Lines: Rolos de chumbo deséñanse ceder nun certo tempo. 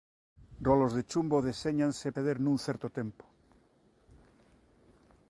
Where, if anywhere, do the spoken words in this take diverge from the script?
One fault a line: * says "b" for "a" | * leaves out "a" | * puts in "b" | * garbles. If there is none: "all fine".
all fine